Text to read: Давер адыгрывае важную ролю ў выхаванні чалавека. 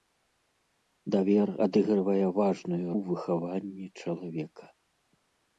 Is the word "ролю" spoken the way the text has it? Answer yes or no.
no